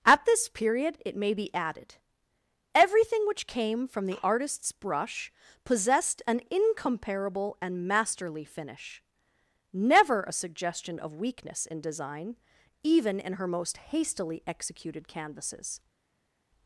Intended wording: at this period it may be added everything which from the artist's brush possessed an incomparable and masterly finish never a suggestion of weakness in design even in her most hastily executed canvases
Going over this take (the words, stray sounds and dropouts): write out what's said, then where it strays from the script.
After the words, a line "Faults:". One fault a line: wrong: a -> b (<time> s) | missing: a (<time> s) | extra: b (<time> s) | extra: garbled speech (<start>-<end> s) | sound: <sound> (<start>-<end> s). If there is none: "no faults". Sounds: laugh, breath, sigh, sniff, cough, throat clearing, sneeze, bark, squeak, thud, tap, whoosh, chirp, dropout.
at this period it may be added everything which came from the artist's brush possessed an incomparable and masterly finish never a suggestion of weakness in design even in her most hastily executed canvases
Faults:
extra: came (3.5 s)